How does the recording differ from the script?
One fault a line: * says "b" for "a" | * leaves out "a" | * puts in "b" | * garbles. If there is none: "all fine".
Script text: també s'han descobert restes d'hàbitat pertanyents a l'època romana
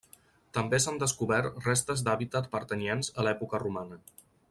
all fine